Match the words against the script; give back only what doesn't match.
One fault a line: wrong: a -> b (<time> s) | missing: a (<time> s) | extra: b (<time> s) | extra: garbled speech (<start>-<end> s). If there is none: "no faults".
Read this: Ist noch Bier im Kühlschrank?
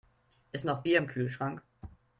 no faults